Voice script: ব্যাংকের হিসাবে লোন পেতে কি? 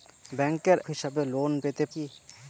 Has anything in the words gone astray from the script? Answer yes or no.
no